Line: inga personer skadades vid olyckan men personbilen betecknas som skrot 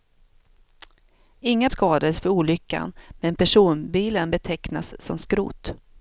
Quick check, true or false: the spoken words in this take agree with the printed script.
false